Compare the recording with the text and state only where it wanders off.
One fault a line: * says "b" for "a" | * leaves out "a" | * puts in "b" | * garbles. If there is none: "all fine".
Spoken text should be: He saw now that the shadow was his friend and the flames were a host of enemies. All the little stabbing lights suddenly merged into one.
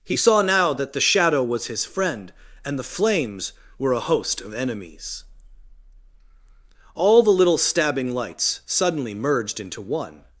all fine